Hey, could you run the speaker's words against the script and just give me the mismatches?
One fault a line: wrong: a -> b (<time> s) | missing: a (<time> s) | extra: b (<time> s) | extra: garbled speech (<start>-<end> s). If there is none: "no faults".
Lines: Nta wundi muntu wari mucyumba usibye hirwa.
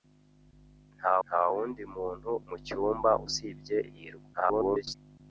extra: nta (1.2 s)
missing: wari (2.3 s)
extra: garbled speech (4.3-4.9 s)